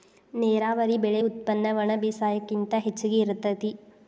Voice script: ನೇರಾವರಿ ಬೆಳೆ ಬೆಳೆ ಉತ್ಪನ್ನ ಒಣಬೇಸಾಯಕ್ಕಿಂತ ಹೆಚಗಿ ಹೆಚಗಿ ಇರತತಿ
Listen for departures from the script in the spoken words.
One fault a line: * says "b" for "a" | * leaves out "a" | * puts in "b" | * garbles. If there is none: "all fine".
* leaves out "ಬೆಳೆ"
* leaves out "ಹೆಚಗಿ"